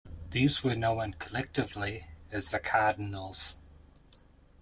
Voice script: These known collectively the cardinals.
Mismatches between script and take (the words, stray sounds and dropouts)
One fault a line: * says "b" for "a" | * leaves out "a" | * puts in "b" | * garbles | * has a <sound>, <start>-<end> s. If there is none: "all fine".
* puts in "were"
* puts in "as"